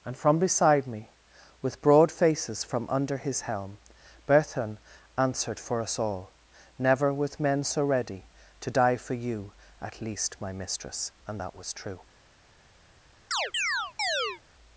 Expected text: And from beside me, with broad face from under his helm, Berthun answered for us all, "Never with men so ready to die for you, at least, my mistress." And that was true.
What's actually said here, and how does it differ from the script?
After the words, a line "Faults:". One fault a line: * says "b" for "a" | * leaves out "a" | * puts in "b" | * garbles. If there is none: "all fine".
And from beside me, with broad faces from under his helm, Berthun answered for us all, "Never with men so ready to die for you, at least, my mistress." And that was true.
Faults:
* says "faces" for "face"